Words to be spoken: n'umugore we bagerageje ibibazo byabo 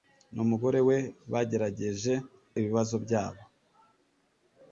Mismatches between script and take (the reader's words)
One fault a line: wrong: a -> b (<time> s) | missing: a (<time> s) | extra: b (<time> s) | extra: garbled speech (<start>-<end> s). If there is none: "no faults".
no faults